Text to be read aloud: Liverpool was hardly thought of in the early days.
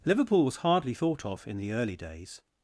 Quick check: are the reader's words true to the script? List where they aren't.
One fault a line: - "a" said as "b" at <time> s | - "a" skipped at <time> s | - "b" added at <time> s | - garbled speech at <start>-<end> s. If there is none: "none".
none